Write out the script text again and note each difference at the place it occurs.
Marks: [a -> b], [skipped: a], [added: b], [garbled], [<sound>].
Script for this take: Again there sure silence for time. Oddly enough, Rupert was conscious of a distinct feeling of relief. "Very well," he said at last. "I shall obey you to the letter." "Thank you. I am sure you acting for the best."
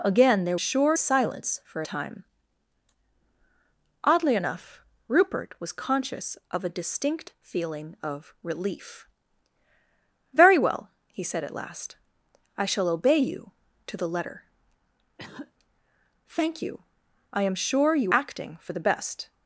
Again there sure silence for time. Oddly enough, Rupert was conscious of a distinct feeling of relief. "Very well," he said at last. "I shall obey you to the letter." [cough] "Thank you. I am sure you acting for the best."